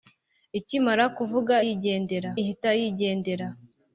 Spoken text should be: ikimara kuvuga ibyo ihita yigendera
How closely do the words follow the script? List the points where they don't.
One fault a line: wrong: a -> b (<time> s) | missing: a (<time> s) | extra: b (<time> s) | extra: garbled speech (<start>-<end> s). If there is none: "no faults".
wrong: ibyo -> yigendera (1.6 s)